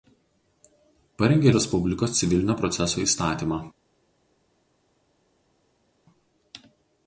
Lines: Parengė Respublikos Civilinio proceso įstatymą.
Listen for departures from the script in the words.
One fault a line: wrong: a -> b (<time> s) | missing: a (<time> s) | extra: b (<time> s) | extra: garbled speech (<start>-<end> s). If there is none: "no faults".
no faults